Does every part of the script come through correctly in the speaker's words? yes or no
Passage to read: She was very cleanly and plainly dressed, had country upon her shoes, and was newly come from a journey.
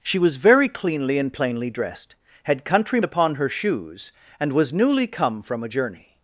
yes